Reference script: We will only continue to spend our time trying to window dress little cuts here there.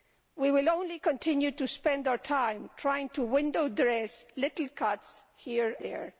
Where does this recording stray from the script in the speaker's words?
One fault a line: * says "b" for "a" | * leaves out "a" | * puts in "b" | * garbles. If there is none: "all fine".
all fine